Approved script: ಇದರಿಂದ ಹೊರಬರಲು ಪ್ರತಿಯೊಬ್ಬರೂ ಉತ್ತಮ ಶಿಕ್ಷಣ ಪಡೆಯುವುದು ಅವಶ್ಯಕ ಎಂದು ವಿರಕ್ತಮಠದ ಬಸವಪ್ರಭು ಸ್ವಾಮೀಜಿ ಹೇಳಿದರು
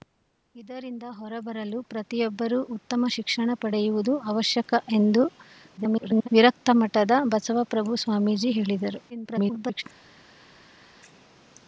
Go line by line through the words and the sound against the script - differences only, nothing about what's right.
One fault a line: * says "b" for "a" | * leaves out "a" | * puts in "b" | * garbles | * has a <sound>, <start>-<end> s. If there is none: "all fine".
* garbles
* garbles